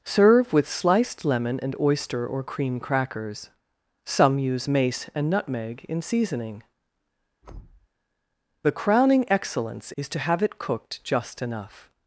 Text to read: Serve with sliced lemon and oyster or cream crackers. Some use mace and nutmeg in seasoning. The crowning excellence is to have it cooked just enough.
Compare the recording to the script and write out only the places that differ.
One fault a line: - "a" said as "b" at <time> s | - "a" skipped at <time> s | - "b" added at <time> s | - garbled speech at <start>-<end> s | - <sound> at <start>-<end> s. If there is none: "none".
- thud at 7.4-7.9 s